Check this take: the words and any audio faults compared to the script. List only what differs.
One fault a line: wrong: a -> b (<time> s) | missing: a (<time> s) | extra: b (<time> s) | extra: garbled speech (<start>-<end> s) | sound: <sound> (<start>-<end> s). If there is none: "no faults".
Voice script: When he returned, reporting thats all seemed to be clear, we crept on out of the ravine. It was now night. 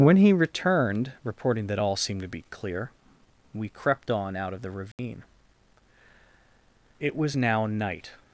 wrong: thats -> that (1.7 s)
sound: dropout (4.9-5.0 s)